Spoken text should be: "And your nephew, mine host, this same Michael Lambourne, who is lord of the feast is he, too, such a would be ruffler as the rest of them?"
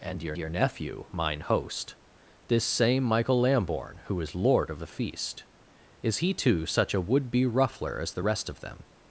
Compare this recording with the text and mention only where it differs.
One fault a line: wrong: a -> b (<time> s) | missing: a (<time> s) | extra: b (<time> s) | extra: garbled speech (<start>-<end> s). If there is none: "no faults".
extra: your (0.4 s)